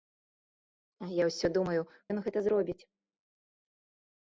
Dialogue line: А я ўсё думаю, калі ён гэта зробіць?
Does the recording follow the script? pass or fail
fail